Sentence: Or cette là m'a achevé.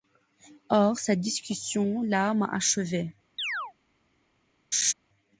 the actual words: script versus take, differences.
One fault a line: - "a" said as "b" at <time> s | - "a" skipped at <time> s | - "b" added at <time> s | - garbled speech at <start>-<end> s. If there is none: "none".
- "discussion" added at 1.2 s